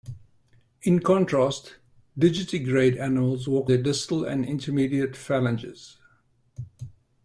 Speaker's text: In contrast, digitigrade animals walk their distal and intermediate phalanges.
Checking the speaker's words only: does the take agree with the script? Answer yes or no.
yes